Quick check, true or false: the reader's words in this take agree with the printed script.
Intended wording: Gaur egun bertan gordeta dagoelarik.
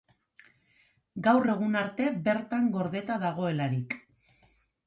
false